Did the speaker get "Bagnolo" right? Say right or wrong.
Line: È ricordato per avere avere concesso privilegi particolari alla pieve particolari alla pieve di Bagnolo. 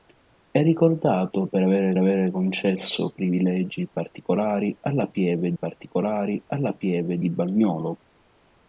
right